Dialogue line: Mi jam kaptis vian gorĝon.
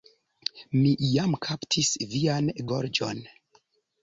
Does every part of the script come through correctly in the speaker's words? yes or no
yes